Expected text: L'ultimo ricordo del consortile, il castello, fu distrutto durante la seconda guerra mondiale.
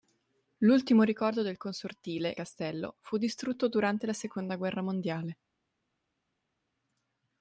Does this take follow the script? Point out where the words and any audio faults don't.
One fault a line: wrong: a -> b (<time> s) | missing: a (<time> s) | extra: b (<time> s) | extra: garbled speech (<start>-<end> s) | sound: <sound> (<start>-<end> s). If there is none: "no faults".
missing: il (2.4 s)